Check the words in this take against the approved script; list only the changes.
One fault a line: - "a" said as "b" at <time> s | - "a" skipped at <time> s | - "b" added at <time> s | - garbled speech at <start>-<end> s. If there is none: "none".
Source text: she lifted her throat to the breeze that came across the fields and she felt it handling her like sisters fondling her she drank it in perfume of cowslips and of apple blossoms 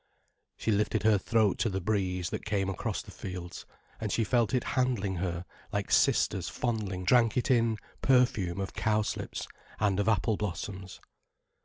- "her she" skipped at 7.0 s